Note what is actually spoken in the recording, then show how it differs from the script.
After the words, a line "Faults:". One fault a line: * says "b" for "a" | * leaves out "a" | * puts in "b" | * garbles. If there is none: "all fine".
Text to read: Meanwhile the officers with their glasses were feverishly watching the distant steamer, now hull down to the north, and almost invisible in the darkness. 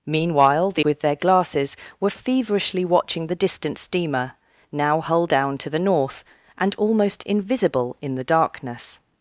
Meanwhile the with their glasses were feverishly watching the distant steamer, now hull down to the north, and almost invisible in the darkness.
Faults:
* leaves out "officers"